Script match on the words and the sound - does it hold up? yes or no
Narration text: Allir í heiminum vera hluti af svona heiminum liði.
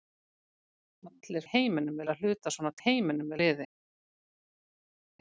yes